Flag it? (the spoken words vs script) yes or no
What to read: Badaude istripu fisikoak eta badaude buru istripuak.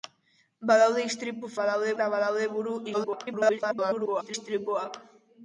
yes